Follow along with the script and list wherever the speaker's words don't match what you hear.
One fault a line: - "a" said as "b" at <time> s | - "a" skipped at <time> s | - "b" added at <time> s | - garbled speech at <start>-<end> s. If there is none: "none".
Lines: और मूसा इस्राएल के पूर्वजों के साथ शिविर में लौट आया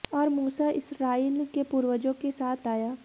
- "शिविर में लौट" skipped at 2.7 s